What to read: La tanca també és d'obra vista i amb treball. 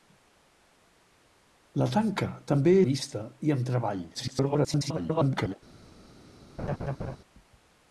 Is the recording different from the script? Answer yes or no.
yes